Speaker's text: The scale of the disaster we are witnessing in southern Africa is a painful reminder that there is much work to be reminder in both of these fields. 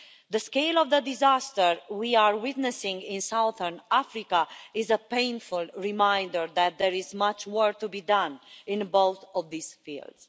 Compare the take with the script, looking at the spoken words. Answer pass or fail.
fail